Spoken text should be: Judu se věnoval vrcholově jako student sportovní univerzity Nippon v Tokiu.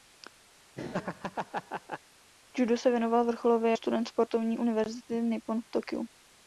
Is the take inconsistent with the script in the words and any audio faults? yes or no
yes